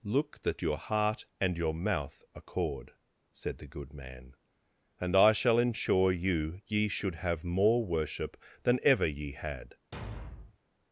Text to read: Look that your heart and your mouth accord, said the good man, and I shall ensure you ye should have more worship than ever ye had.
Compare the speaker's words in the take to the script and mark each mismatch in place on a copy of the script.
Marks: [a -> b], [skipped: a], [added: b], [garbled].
Look that your heart and your mouth accord, said the good man, and I shall ensure you ye should have more worship than ever ye had.